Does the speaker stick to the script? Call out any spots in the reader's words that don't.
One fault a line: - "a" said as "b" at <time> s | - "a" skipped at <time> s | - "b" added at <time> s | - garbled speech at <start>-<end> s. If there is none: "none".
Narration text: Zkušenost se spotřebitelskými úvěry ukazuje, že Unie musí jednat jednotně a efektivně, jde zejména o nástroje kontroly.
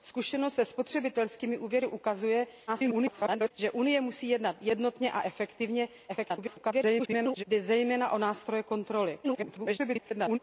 - garbled speech at 2.7-3.5 s
- garbled speech at 6.1-7.4 s
- garbled speech at 9.2-10.4 s